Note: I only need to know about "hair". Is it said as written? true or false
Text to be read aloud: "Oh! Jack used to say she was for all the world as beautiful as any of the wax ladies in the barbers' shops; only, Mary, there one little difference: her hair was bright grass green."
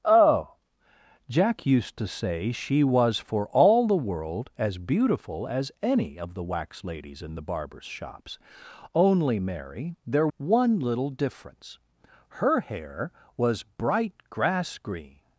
true